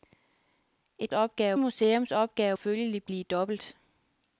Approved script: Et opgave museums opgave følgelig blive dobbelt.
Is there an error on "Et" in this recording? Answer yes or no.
no